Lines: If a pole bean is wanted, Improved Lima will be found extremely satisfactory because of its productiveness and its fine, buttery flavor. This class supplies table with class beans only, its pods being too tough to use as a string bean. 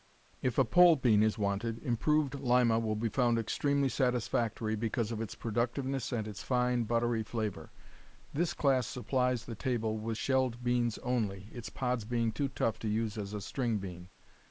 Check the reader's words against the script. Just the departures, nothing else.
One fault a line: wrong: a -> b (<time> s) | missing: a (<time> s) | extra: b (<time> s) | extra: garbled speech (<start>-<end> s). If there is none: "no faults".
extra: the (9.4 s)
wrong: class -> shelled (10.1 s)